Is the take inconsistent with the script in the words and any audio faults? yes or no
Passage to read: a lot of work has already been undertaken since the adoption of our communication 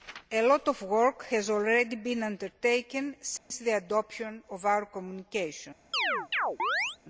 yes